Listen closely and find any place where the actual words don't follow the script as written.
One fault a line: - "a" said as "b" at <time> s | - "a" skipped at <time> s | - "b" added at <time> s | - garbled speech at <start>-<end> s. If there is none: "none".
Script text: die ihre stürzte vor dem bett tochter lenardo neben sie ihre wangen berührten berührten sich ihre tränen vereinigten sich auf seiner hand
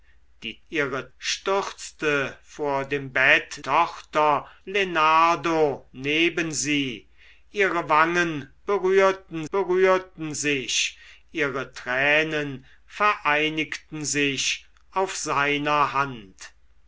none